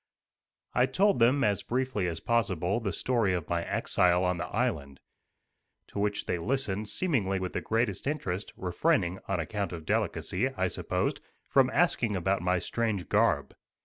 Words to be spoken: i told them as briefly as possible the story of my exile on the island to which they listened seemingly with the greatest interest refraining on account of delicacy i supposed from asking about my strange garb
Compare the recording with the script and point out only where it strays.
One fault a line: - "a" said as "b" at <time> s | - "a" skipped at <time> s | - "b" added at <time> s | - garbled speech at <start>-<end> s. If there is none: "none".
none